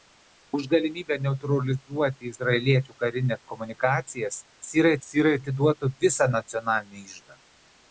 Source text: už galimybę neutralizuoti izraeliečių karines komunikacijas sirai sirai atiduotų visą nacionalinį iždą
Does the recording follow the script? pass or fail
pass